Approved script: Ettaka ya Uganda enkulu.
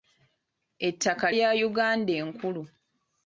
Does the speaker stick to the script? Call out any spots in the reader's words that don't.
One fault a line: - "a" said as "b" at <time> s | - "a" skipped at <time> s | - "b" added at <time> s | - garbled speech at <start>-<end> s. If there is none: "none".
none